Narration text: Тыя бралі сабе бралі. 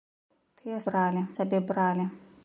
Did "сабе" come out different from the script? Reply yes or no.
no